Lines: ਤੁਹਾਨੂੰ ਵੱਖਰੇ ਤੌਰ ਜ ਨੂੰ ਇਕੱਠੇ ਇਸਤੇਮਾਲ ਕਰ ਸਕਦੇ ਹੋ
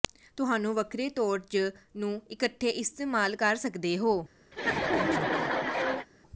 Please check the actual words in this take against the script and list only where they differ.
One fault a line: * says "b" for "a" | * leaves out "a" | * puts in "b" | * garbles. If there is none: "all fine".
all fine